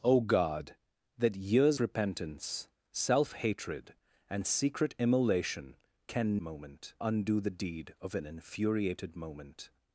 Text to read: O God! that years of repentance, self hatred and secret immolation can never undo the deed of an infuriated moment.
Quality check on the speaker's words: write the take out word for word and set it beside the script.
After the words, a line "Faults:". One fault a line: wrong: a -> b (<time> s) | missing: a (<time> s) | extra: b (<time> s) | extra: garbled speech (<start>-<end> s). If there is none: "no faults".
O God! that years repentance, self hatred and secret immolation can moment undo the deed of an infuriated moment.
Faults:
missing: of (1.8 s)
wrong: never -> moment (6.4 s)